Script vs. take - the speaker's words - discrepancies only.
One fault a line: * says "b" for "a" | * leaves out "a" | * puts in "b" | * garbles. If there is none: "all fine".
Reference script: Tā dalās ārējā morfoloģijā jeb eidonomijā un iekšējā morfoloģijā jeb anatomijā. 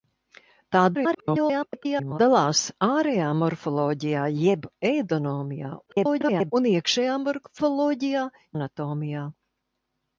* garbles
* garbles
* leaves out "jeb"